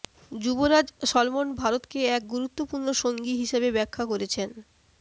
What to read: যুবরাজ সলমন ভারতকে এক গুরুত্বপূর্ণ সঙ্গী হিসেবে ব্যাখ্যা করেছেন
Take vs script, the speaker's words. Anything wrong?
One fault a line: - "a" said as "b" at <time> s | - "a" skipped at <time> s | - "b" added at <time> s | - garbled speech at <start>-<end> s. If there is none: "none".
none